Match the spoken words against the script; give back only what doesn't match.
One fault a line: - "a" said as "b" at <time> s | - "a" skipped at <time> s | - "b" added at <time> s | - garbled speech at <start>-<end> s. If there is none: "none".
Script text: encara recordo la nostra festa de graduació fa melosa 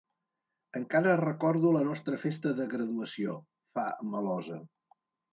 none